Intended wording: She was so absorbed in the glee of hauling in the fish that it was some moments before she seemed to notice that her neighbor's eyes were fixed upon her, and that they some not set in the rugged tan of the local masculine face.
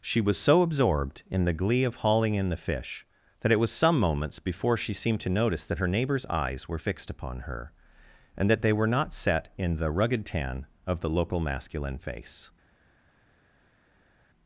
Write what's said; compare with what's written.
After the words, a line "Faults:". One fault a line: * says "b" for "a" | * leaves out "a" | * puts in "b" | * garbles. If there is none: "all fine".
She was so absorbed in the glee of hauling in the fish that it was some moments before she seemed to notice that her neighbor's eyes were fixed upon her, and that they were not set in the rugged tan of the local masculine face.
Faults:
* says "were" for "some"